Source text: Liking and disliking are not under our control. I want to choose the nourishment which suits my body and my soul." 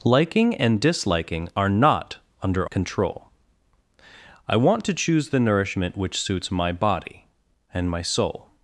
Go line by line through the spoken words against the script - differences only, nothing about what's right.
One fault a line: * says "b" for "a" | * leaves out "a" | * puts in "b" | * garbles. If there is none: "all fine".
* leaves out "our"